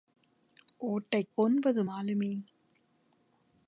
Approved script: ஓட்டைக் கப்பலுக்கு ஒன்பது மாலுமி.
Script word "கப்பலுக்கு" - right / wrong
wrong